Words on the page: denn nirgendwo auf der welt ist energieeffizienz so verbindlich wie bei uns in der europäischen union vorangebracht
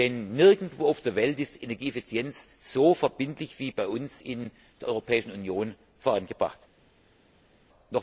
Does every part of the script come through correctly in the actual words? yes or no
yes